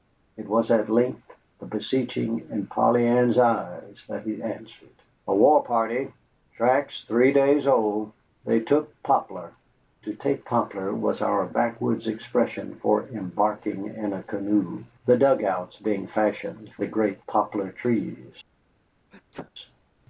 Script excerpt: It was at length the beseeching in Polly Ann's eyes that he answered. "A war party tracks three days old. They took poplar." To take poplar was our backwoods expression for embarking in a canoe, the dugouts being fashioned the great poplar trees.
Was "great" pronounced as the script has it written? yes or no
yes